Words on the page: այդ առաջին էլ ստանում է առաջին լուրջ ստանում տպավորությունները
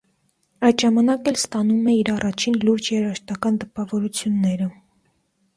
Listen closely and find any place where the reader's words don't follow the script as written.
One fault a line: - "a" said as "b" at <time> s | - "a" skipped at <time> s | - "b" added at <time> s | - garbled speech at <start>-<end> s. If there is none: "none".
- "առաջին" said as "ժամանակ" at 0.8 s
- "իր" added at 2.0 s
- "ստանում" said as "երաժշտական" at 3.0 s